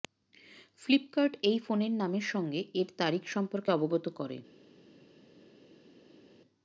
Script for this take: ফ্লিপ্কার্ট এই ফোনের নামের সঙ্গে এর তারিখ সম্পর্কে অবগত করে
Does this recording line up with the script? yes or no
yes